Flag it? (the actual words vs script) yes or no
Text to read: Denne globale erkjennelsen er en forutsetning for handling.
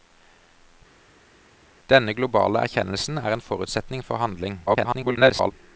yes